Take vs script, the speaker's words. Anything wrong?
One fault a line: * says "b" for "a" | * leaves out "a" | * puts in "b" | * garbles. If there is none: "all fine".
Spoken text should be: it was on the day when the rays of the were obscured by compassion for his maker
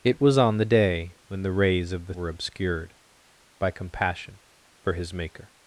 all fine